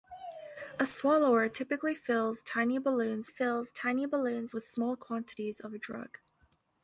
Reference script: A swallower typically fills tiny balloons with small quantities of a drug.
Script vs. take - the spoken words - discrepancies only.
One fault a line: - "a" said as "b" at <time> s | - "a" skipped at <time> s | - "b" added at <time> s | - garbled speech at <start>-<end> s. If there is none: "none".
- "fills tiny balloons" added at 3.3 s